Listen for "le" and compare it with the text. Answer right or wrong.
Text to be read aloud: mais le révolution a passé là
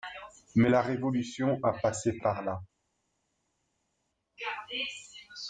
wrong